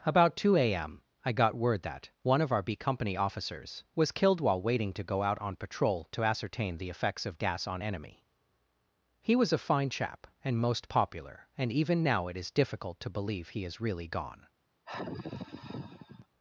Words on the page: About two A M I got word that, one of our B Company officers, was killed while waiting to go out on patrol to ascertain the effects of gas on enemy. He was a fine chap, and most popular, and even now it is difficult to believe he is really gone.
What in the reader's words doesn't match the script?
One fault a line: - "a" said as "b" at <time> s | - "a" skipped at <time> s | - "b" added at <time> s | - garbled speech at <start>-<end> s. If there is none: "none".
none